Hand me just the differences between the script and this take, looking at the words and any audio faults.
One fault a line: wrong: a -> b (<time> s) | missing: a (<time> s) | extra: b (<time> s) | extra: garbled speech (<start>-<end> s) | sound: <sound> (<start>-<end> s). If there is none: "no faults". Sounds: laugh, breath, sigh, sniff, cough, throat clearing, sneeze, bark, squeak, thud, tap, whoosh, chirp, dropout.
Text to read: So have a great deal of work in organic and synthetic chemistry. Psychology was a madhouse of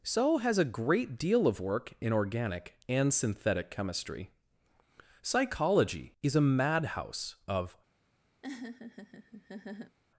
wrong: have -> has (0.4 s)
wrong: was -> is (6.2 s)
sound: laugh (8.4-10.0 s)